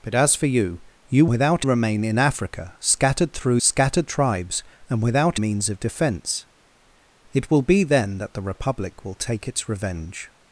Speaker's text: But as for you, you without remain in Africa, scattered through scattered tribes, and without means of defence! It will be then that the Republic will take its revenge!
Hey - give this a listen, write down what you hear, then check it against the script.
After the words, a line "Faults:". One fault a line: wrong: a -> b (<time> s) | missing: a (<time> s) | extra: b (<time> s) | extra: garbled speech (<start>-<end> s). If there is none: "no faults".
But as for you, you without remain in Africa, scattered through scattered tribes, and without means of defence! It will be then that the Republic will take its revenge!
Faults:
no faults